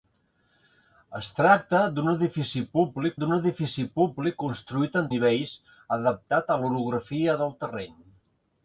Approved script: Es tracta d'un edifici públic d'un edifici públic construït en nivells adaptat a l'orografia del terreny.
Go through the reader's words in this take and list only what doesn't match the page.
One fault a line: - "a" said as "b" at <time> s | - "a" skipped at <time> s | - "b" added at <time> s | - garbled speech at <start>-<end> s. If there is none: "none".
none